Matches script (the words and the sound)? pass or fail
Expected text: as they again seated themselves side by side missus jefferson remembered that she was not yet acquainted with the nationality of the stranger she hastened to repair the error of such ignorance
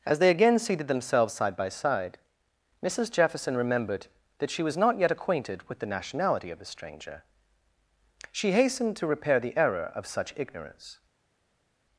pass